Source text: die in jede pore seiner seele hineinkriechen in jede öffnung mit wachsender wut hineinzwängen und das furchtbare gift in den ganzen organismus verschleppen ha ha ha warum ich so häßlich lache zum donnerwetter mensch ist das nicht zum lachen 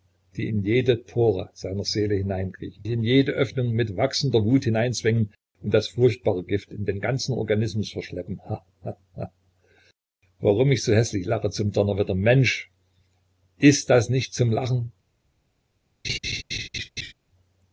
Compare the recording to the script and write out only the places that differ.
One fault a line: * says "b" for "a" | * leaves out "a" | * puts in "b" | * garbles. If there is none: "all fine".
all fine